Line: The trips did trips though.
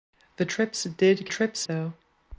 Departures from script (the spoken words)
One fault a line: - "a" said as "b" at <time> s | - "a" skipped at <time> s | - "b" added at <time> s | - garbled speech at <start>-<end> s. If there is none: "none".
none